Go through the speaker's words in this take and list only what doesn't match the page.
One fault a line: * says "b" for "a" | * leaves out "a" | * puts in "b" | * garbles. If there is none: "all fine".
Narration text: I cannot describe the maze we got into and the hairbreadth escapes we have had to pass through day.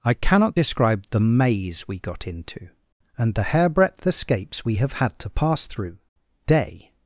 all fine